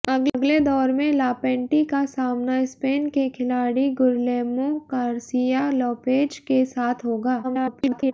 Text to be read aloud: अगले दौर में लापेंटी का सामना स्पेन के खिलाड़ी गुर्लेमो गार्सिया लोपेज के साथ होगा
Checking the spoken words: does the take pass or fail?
fail